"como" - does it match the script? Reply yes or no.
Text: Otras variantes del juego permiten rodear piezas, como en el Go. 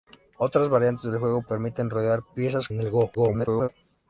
no